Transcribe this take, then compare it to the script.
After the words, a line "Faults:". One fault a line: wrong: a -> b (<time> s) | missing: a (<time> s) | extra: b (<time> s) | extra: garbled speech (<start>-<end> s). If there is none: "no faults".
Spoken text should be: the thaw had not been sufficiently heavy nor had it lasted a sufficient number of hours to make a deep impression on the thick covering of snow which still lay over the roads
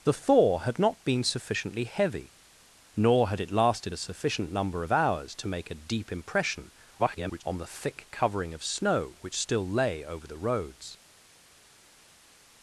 the thaw had not been sufficiently heavy nor had it lasted a sufficient number of hours to make a deep impression [garbled] on the thick covering of snow which still lay over the roads
Faults:
extra: garbled speech (7.0-7.4 s)